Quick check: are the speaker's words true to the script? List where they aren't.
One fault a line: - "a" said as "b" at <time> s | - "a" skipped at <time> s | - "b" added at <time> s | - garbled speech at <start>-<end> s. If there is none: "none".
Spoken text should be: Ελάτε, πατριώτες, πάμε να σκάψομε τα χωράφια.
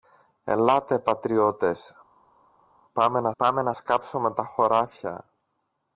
- "πάμε να" added at 3.4 s